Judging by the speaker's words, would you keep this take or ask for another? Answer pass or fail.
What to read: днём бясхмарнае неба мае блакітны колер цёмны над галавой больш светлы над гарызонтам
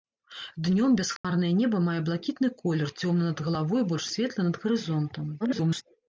fail